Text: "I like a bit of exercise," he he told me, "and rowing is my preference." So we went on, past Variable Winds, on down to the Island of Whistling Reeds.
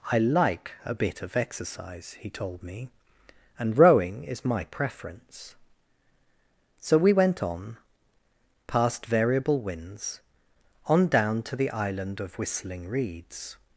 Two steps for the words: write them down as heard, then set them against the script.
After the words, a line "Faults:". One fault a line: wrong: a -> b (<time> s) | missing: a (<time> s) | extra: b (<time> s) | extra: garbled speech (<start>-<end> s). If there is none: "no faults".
"I like a bit of exercise," he told me, "and rowing is my preference." So we went on, past Variable Winds, on down to the Island of Whistling Reeds.
Faults:
missing: he (2.3 s)